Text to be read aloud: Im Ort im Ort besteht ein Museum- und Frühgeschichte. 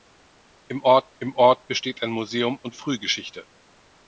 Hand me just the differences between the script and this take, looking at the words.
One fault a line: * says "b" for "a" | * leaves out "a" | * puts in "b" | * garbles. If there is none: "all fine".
all fine